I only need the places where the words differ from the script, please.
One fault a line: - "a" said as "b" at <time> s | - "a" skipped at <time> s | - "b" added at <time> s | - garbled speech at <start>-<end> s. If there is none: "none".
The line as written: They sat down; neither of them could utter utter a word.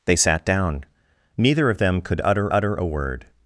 none